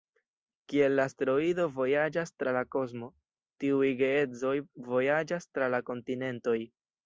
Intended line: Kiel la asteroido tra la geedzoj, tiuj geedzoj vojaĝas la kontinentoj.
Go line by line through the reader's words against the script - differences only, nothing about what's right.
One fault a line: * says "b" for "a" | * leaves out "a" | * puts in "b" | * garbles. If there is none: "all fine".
* puts in "vojaĝas"
* says "kosmo" for "geedzoj"
* puts in "tra"